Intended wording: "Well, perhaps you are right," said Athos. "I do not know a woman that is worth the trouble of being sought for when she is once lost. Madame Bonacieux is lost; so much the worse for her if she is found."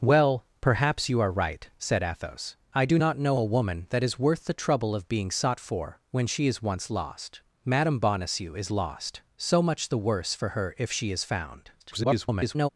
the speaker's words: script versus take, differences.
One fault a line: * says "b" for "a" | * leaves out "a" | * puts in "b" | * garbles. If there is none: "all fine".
* garbles